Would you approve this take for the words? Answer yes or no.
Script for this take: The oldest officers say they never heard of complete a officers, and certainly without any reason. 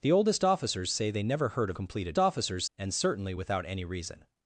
yes